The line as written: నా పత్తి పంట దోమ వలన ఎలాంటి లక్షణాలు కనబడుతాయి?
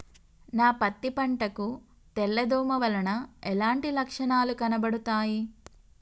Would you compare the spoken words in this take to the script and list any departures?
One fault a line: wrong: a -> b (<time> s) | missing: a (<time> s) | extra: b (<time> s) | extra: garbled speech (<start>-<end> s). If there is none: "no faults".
extra: కు తెల్ల (1.5 s)